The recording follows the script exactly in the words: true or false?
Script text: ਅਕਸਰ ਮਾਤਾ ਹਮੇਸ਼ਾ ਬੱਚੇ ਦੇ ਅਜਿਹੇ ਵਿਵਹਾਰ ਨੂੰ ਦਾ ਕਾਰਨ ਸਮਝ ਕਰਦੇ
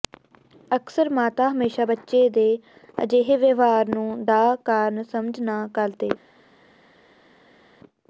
false